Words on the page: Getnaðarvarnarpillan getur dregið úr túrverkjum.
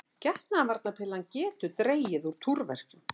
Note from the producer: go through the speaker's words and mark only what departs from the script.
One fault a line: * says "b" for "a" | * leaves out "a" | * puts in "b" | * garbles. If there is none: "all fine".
all fine